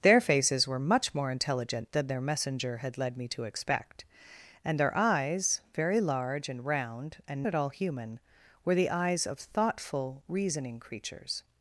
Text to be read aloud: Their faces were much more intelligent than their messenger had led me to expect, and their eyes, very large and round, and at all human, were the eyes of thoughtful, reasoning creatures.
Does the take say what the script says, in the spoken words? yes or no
yes